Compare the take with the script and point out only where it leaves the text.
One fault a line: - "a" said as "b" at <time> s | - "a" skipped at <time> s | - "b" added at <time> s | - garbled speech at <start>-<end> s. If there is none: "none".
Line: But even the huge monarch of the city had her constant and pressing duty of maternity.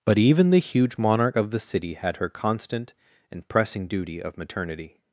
none